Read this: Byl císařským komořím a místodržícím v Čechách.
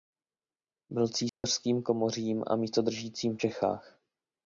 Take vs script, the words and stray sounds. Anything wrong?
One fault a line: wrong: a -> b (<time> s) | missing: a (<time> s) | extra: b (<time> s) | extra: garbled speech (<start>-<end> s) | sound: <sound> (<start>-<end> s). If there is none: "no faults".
sound: dropout (1.3-1.4 s)